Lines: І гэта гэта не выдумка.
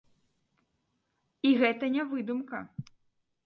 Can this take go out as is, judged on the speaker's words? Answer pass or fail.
fail